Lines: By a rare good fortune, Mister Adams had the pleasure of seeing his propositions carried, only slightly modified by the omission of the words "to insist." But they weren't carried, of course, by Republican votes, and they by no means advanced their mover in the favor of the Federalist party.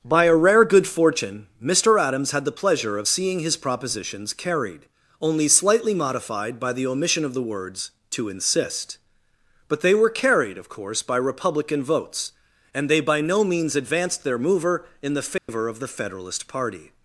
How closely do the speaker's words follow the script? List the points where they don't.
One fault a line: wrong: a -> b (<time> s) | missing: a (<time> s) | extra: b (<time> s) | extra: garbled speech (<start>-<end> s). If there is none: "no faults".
wrong: weren't -> were (9.9 s)